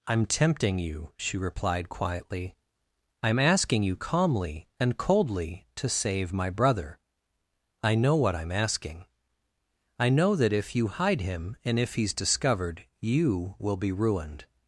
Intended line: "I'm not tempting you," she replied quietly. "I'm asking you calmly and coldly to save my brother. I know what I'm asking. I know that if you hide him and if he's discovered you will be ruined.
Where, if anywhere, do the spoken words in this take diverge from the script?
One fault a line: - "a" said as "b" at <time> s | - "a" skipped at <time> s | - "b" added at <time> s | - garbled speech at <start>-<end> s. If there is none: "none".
- "not" skipped at 0.2 s